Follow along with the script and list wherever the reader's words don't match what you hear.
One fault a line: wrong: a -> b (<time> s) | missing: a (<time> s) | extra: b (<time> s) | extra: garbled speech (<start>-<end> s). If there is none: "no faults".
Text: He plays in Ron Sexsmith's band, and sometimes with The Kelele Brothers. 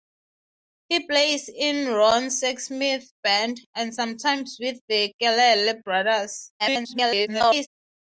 extra: garbled speech (6.6-7.7 s)